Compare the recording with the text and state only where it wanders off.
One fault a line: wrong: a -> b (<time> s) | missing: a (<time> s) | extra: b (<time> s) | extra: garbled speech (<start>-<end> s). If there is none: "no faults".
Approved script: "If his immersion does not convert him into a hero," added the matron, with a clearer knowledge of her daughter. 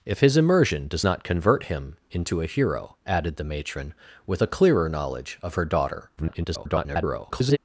extra: garbled speech (6.2-7.6 s)